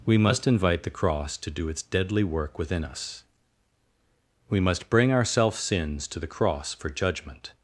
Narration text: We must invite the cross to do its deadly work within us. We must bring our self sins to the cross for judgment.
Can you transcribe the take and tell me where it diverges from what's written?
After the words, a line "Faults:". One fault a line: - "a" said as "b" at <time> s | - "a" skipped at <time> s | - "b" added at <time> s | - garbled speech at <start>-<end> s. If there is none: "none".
We must invite the cross to do its deadly work within us. We must bring our self sins to the cross for judgment.
Faults:
none